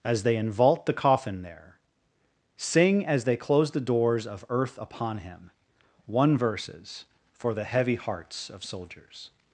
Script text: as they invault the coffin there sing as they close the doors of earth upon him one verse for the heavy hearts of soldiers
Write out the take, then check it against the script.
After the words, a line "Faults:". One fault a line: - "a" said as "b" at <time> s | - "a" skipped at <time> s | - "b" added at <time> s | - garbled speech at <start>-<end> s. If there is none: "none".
as they invault the coffin there sing as they close the doors of earth upon him one verses for the heavy hearts of soldiers
Faults:
- "verse" said as "verses" at 6.4 s